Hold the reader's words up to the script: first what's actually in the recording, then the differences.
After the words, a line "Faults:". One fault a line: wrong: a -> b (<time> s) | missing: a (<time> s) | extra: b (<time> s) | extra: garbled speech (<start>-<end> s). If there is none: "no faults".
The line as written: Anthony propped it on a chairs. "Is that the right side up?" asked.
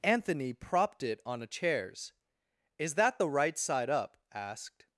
Anthony propped it on a chairs. "Is that the right side up?" asked.
Faults:
no faults